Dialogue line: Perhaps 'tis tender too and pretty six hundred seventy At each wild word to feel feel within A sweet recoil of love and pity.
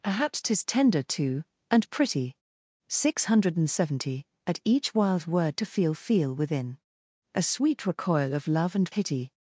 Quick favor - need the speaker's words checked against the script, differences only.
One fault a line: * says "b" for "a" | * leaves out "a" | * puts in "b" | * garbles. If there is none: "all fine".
all fine